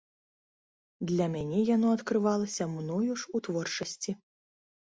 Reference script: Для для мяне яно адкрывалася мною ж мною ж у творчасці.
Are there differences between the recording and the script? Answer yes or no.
yes